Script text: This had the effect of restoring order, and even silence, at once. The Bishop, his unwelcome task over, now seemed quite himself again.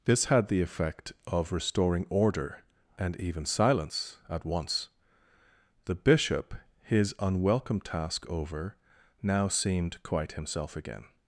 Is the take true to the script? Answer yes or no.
yes